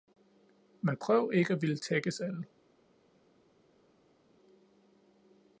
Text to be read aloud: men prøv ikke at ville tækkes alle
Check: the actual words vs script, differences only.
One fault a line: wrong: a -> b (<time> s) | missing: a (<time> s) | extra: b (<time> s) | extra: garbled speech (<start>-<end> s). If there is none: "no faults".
no faults